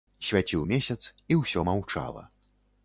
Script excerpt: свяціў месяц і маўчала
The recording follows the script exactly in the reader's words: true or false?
false